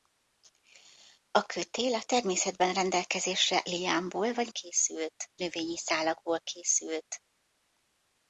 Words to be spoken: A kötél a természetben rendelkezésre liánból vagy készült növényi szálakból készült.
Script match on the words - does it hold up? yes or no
yes